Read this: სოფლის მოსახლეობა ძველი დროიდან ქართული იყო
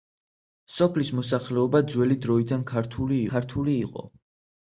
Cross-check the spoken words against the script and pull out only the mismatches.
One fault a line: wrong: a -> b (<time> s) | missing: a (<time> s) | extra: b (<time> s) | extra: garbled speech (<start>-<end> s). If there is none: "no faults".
extra: ქართული (3.3 s)